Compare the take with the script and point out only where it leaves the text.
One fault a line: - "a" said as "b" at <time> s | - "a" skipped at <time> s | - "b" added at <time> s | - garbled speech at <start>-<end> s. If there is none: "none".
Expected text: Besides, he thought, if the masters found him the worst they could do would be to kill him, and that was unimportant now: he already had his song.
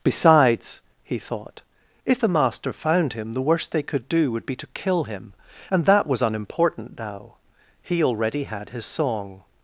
- "masters" said as "master" at 2.3 s